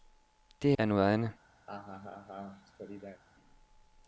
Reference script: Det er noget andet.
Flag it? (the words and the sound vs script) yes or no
yes